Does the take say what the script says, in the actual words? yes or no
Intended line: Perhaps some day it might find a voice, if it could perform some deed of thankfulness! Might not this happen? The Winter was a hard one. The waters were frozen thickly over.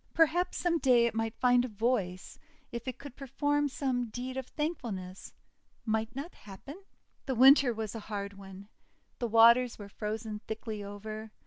no